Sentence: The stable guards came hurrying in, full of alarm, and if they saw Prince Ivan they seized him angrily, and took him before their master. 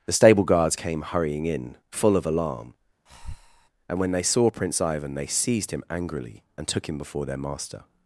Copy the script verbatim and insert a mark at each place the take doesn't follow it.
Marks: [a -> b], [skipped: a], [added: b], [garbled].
The stable guards came hurrying in, full of alarm, and [if -> when] they saw Prince Ivan they seized him angrily, and took him before their master.